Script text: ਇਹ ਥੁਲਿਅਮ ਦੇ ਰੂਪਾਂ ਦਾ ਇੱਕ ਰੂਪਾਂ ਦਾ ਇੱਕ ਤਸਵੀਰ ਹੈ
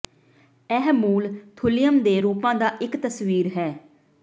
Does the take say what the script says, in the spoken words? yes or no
no